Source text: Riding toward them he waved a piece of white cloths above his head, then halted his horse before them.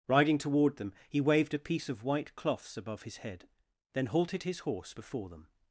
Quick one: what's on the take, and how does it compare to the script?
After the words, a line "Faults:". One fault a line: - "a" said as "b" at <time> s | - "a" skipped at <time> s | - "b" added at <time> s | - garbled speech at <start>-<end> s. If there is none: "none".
Riding toward them he waved a piece of white cloths above his head, then halted his horse before them.
Faults:
none